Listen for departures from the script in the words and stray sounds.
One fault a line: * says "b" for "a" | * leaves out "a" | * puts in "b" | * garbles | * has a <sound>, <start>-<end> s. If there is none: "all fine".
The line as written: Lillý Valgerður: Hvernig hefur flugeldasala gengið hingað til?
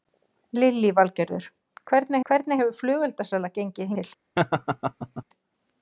* puts in "Hvernig"
* leaves out "hingað"
* has a laugh, 4.4-5.2 s